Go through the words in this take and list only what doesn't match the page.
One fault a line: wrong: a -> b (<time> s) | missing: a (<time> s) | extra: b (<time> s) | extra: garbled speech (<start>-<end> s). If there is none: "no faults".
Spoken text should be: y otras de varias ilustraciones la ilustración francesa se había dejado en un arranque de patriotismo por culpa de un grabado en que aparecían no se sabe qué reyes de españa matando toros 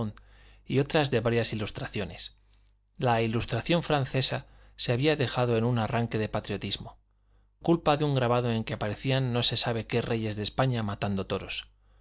missing: por (7.0 s)